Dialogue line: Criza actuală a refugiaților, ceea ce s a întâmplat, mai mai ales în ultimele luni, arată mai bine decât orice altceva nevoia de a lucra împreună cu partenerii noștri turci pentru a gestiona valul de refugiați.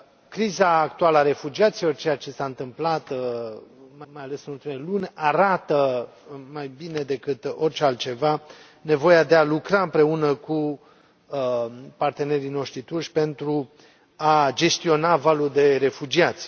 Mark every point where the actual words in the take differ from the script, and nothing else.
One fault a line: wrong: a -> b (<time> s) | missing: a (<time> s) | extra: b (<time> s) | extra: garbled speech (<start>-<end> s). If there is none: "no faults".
no faults